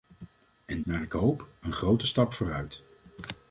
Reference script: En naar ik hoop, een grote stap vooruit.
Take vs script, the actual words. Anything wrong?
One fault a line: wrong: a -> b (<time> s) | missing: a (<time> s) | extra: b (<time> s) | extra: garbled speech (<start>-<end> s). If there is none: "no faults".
no faults